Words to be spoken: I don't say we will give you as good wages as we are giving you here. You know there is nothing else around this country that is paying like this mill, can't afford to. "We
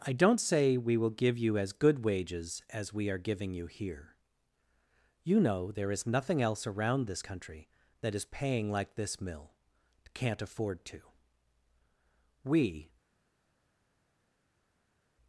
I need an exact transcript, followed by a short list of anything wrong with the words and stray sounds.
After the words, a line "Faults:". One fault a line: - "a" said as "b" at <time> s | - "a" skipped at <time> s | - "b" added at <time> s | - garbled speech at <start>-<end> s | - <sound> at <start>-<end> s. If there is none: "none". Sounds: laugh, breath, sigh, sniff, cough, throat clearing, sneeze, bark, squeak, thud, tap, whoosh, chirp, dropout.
I don't say we will give you as good wages as we are giving you here. You know there is nothing else around this country that is paying like this mill, can't afford to. "We
Faults:
none